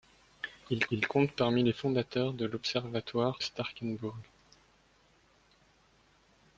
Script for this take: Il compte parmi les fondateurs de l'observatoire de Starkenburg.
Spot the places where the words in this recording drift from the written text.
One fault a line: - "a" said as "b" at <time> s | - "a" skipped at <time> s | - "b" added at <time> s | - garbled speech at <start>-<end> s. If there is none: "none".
- "il" added at 0.9 s
- "de" skipped at 3.4 s